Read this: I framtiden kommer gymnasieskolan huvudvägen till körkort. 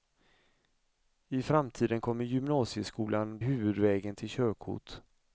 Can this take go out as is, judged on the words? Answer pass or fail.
pass